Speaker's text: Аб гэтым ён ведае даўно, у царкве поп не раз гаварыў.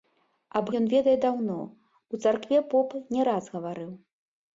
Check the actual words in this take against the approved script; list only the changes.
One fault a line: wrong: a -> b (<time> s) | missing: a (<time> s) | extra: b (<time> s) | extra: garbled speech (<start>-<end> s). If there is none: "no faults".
missing: гэтым (0.7 s)